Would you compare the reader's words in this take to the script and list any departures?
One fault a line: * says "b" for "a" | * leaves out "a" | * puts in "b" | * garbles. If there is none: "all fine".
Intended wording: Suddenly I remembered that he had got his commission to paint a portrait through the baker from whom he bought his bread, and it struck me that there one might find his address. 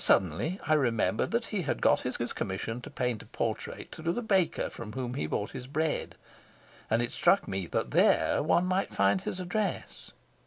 * puts in "his"